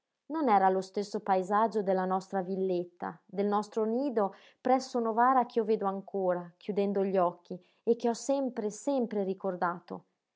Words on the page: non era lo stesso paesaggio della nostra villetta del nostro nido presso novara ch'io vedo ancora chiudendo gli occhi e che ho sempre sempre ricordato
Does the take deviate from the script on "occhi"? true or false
false